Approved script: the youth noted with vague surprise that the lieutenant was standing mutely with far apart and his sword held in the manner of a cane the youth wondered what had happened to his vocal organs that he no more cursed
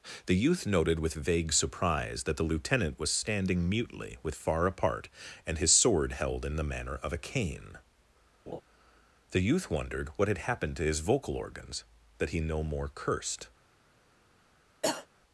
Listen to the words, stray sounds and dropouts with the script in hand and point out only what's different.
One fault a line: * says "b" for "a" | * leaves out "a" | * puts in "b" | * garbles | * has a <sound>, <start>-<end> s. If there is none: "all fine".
* has a laugh, 8.5-8.6 s
* has a cough, 14.8-15.1 s